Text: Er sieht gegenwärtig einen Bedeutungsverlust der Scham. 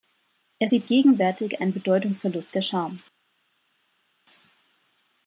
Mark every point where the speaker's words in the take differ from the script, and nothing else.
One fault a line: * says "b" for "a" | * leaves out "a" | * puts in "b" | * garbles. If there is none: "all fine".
all fine